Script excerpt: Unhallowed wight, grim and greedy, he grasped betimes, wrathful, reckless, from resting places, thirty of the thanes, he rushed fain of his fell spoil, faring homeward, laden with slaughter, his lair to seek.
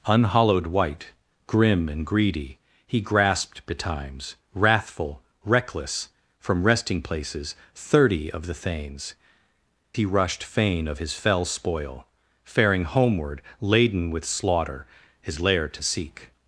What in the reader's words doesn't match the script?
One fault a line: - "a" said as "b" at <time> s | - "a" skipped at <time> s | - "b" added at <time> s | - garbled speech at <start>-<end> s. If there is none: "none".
none